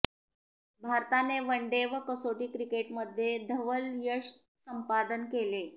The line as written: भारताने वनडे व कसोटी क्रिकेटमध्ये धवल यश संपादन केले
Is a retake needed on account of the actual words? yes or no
no